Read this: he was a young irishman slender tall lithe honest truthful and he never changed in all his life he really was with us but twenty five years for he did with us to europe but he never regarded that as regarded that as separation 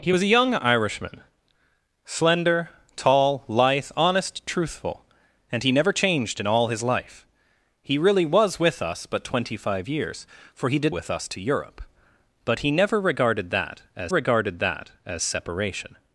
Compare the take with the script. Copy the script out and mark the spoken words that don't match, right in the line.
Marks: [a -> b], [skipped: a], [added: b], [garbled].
he was a young irishman slender tall lithe honest truthful and he never changed in all his life he really was with us but twenty five years for he did with us to europe but he never regarded that as regarded that as separation